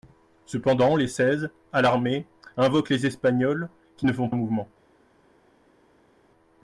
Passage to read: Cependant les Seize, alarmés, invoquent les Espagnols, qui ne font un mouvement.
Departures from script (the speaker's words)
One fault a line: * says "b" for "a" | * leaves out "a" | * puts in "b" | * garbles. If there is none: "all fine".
all fine